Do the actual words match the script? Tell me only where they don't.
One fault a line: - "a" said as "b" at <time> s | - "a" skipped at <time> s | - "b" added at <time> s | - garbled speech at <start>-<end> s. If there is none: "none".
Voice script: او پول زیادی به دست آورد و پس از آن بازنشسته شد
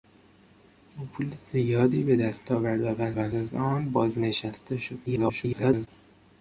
- "پس" added at 3.1 s
- garbled speech at 5.1-5.9 s